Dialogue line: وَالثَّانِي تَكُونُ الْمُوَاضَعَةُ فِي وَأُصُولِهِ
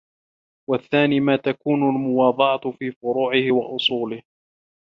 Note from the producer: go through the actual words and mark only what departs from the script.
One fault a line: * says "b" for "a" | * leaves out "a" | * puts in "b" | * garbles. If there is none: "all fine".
* puts in "مَا"
* puts in "فُرُوعِهِ"